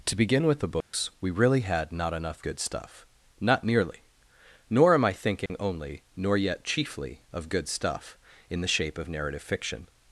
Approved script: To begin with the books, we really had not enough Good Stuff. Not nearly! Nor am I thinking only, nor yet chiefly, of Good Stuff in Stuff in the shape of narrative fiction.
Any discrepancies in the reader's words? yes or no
yes